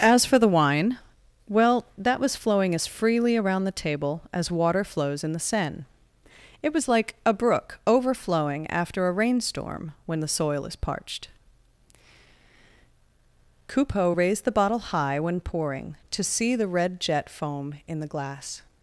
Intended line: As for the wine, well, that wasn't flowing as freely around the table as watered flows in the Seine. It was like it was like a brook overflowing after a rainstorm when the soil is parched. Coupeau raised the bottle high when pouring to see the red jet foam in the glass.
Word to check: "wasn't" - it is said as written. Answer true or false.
false